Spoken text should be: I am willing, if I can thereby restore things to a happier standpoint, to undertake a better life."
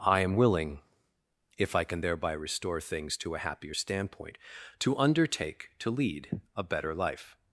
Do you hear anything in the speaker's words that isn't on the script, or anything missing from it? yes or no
yes